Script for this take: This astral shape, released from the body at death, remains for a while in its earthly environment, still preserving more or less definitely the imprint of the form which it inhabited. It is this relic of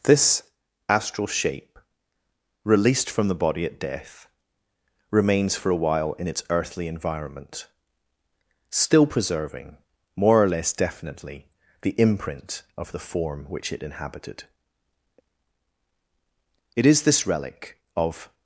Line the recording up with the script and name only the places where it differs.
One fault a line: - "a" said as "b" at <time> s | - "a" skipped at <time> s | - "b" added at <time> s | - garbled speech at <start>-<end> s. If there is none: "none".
none